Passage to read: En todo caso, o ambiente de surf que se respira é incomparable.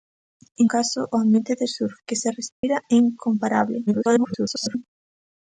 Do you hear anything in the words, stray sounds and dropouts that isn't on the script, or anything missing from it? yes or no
yes